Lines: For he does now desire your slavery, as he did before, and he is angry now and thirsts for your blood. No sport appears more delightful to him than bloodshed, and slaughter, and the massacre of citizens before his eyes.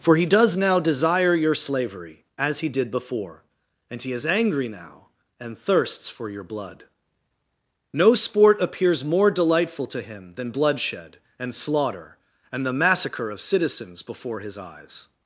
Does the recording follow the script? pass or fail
pass